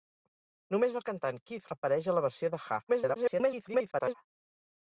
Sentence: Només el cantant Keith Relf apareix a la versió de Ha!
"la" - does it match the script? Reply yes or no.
yes